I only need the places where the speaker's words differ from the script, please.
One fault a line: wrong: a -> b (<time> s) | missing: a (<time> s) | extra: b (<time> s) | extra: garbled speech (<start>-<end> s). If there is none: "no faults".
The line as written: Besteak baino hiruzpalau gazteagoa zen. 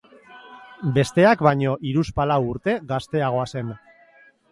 extra: urte (2.5 s)